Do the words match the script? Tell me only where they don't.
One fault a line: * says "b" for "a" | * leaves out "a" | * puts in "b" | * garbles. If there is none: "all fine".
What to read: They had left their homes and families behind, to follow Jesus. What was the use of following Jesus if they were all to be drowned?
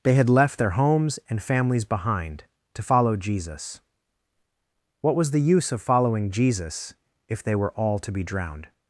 all fine